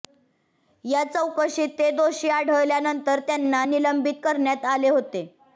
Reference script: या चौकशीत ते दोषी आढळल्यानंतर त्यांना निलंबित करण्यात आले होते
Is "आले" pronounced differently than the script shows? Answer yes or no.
no